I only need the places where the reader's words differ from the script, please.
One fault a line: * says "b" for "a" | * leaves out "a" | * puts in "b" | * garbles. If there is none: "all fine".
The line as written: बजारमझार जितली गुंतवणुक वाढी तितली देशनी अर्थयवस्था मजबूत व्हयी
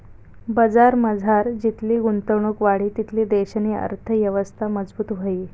all fine